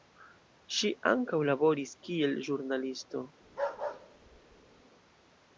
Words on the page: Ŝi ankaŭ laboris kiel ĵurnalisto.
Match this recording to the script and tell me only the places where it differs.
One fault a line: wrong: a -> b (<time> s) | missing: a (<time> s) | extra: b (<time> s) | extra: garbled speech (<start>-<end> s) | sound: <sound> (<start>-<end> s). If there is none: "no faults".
sound: bark (3.4-4.8 s)